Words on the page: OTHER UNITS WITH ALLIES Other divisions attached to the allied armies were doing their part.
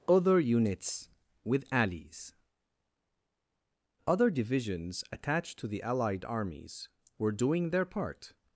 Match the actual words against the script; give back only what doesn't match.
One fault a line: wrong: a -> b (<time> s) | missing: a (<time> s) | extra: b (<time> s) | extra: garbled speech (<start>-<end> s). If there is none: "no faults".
no faults